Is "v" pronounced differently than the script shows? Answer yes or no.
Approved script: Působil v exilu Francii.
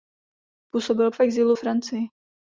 no